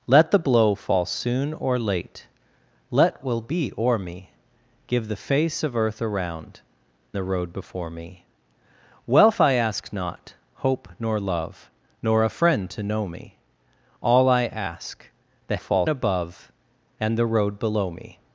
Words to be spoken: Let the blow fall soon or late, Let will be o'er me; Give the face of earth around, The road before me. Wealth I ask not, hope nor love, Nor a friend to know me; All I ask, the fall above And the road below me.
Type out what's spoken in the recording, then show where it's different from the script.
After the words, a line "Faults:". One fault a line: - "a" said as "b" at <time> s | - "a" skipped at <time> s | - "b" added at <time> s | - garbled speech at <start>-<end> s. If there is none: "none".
Let the blow fall soon or late, Let will be o'er me; Give the face of earth around, The road before me. Wealth I ask not, hope nor love, Nor a friend to know me; All I ask, the fall above And the road below me.
Faults:
none